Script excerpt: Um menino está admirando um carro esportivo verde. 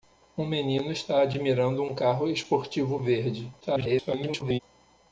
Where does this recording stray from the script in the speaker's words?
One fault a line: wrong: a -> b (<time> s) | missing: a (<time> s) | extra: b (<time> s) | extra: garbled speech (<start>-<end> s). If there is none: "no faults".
extra: garbled speech (3.6-4.6 s)